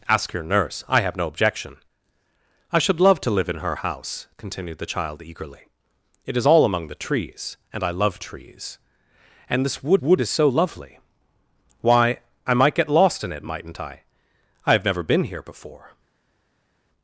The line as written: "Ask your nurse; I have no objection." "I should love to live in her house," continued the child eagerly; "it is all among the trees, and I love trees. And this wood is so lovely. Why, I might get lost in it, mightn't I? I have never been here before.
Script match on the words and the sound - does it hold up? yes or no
no